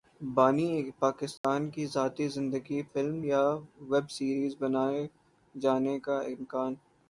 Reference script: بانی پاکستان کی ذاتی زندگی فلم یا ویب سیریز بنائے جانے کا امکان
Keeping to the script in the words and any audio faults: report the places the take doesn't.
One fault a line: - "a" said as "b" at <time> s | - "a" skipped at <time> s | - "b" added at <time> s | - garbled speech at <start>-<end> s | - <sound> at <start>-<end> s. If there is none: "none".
- dropout at 1.4-1.4 s